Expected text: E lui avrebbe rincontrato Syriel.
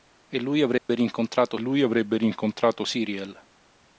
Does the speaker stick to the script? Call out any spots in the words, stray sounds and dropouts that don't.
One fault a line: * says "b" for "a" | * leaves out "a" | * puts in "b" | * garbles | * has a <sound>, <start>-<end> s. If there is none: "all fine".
* has a dropout, 0.8-0.9 s
* puts in "lui avrebbe rincontrato"